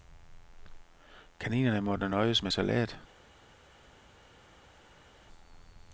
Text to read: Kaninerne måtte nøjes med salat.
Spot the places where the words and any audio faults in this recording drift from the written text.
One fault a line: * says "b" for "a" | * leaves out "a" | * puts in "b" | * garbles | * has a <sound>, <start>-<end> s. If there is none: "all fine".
all fine